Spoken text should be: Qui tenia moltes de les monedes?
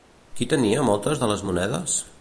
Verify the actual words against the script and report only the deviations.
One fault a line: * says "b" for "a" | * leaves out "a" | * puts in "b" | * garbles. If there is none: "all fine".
all fine